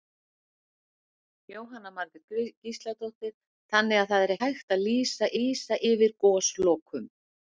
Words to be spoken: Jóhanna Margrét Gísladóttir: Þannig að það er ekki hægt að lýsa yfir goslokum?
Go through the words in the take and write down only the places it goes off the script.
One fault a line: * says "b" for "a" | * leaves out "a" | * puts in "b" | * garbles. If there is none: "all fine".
* leaves out "ekki"
* puts in "lýsa"